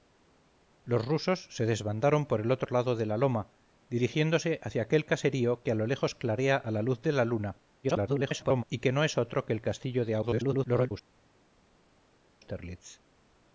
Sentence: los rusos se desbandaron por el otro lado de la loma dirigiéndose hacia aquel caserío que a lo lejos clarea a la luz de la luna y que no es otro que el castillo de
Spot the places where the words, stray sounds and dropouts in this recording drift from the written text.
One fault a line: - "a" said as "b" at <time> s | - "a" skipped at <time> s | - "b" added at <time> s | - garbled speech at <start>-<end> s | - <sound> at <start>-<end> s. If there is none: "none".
- garbled speech at 7.8-8.6 s
- garbled speech at 10.2-10.9 s